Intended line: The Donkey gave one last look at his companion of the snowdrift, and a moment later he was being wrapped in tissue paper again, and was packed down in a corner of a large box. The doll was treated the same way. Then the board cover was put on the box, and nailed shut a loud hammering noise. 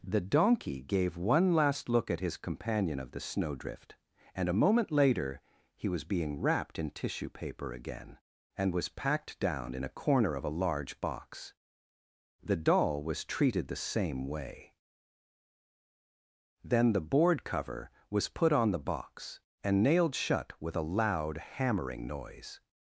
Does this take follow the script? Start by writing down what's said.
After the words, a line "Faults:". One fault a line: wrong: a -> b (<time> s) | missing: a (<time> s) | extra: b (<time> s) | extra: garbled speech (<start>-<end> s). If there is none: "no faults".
The Donkey gave one last look at his companion of the snowdrift, and a moment later he was being wrapped in tissue paper again, and was packed down in a corner of a large box. The doll was treated the same way. Then the board cover was put on the box, and nailed shut with a loud hammering noise.
Faults:
extra: with (20.6 s)